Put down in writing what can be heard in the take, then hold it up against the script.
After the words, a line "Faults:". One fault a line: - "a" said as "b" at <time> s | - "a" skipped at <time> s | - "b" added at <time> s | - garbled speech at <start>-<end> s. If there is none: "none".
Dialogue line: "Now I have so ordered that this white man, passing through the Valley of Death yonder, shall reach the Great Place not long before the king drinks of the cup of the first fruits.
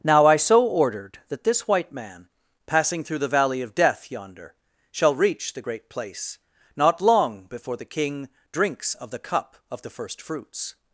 "Now I so ordered that this white man, passing through the Valley of Death yonder, shall reach the Great Place not long before the king drinks of the cup of the first fruits.
Faults:
- "have" skipped at 0.3 s